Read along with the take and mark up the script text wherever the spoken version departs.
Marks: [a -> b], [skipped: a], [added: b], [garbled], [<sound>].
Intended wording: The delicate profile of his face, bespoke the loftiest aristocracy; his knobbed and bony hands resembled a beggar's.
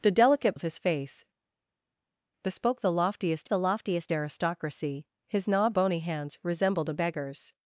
The delicate [skipped: profile] of his face, bespoke the loftiest [added: the loftiest] aristocracy; his knobbed [skipped: and] bony hands resembled a beggar's.